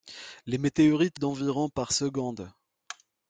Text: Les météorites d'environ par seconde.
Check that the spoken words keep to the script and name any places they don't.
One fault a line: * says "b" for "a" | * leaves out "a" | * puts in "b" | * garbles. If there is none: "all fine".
all fine